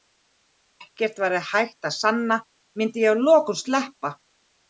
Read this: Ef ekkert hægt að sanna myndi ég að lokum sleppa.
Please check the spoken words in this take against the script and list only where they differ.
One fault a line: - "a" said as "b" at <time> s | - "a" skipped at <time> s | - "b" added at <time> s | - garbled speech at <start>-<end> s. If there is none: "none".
- "væri" added at 1.2 s